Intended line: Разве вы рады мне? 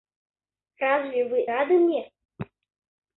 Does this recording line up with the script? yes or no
yes